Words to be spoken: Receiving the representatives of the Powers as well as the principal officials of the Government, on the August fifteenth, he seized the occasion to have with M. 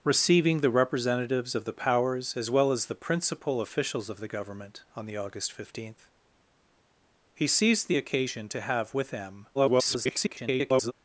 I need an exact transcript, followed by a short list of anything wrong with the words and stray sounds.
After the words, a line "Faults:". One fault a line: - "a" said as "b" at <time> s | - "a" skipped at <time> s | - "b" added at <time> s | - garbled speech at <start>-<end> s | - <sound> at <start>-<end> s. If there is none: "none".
Receiving the representatives of the Powers as well as the principal officials of the Government, on the August fifteenth, he seized the occasion to have with M. [garbled]
Faults:
- garbled speech at 9.5-10.9 s